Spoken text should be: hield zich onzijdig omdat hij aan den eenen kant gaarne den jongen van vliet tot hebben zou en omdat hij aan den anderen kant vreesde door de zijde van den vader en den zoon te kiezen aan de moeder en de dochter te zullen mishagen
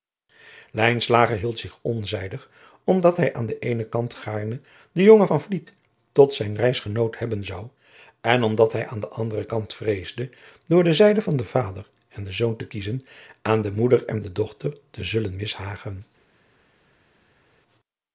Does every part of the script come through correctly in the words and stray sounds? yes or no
no